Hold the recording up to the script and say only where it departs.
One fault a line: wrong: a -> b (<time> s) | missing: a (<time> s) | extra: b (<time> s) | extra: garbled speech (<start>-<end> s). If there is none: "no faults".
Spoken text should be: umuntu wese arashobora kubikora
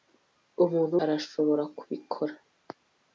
missing: wese (0.9 s)